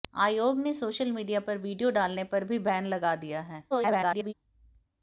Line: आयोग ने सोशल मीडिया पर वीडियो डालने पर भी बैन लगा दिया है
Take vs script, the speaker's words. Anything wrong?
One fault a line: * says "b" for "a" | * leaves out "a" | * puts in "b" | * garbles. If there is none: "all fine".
* garbles